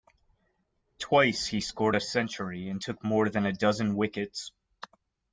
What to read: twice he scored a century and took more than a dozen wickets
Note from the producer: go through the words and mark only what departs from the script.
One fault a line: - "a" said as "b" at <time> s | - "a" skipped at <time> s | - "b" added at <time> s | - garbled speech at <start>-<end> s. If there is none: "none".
none